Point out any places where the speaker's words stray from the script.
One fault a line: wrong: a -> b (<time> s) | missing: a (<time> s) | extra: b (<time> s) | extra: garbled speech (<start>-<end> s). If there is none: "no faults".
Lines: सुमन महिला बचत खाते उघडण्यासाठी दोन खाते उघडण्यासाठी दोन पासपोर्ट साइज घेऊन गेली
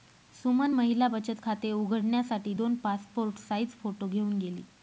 missing: खाते उघडण्यासाठी दोन (2.8 s)
extra: फोटो (3.8 s)